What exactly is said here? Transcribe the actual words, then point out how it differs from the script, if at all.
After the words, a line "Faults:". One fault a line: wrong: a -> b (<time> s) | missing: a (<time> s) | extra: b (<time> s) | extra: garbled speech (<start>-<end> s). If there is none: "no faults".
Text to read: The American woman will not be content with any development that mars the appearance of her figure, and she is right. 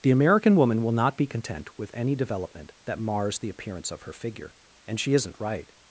The American woman will not be content with any development that mars the appearance of her figure, and she isn't right.
Faults:
wrong: is -> isn't (5.1 s)